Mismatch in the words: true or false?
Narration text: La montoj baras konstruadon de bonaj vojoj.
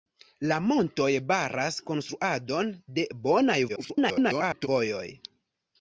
true